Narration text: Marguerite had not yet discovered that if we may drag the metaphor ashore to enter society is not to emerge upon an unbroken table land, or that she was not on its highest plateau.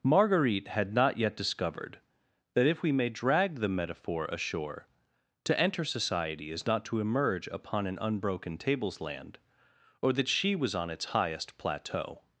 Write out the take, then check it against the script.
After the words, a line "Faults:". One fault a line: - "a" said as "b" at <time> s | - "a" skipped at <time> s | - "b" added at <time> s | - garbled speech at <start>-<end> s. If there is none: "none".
Marguerite had not yet discovered that if we may drag the metaphor ashore to enter society is not to emerge upon an unbroken tables land, or that she was on its highest plateau.
Faults:
- "table" said as "tables" at 8.6 s
- "not" skipped at 10.7 s